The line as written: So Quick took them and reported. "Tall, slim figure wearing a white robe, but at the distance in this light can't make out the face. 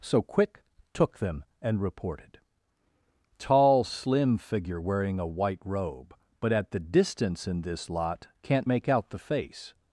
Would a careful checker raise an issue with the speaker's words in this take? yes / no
yes